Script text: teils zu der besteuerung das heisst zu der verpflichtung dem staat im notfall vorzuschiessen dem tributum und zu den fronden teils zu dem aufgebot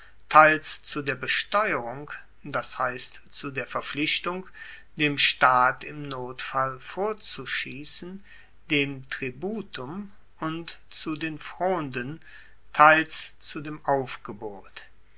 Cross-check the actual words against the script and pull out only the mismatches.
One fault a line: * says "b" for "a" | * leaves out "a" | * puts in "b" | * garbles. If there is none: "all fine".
all fine